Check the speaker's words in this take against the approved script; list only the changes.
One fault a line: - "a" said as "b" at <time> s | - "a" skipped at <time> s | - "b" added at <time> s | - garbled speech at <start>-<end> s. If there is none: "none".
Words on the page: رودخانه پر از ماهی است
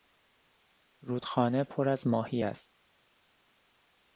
none